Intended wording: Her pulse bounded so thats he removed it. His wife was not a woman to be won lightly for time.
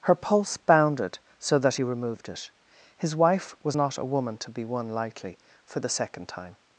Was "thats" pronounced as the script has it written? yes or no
no